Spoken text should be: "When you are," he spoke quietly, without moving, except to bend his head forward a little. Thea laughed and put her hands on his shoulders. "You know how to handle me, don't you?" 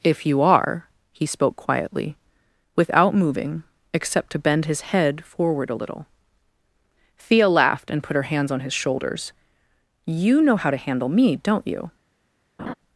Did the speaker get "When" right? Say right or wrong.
wrong